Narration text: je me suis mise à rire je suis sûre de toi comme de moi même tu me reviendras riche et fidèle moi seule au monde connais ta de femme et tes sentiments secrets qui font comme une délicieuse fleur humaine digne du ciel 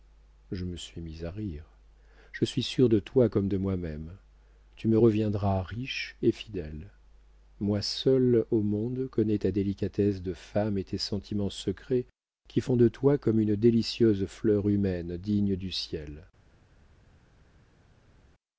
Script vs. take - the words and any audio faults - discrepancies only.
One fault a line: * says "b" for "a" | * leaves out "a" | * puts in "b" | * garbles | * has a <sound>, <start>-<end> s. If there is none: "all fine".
* puts in "délicatesse"
* puts in "de toi"